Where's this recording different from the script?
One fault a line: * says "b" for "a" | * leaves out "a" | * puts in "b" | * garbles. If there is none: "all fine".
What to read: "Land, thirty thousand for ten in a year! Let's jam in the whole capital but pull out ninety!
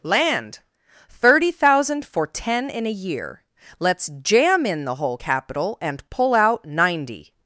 * says "and" for "but"